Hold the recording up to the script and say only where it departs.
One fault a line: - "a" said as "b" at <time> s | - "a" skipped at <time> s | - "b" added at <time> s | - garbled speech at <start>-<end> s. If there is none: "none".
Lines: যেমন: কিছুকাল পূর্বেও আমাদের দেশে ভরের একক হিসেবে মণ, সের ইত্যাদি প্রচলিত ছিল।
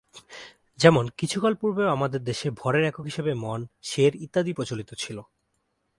none